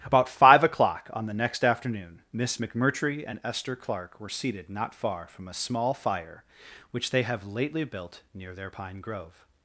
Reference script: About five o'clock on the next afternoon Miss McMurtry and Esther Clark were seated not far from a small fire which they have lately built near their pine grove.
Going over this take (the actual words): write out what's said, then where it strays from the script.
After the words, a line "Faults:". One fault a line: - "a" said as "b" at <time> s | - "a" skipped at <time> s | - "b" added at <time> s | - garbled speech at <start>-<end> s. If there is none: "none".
About five o'clock on the next afternoon Miss McMurtry and Esther Clark were seated not far from a small fire which they have lately built near their pine grove.
Faults:
none